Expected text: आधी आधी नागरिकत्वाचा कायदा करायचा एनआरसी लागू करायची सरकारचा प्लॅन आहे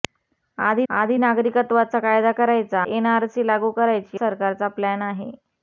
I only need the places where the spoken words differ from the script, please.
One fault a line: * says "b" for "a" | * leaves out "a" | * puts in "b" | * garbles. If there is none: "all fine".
all fine